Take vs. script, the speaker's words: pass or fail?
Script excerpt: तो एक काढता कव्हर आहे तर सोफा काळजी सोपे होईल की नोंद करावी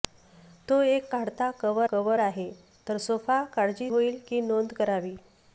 fail